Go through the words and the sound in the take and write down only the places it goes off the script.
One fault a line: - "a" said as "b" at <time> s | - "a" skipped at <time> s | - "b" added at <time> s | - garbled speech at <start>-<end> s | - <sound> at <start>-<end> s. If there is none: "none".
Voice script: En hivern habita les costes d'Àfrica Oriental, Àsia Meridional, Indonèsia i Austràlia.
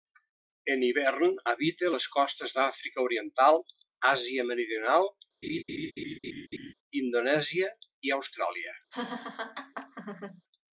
- laugh at 5.4-6.7 s
- laugh at 8.9-10.4 s